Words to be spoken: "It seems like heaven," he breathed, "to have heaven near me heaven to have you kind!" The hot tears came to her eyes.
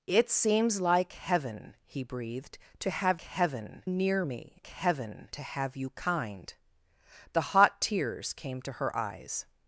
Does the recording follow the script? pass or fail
pass